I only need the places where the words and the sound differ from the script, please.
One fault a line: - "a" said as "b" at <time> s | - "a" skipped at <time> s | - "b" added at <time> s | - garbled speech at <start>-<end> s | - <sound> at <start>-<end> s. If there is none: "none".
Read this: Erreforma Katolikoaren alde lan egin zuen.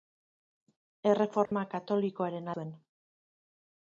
- dropout at 1.5-1.5 s
- "alde lan egin" skipped at 2.5 s